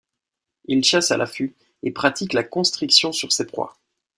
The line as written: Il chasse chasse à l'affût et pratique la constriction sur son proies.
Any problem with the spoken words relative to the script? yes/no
yes